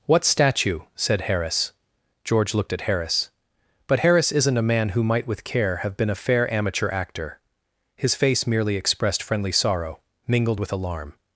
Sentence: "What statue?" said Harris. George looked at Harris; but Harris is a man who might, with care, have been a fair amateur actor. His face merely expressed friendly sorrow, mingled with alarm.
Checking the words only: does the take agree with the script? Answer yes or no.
no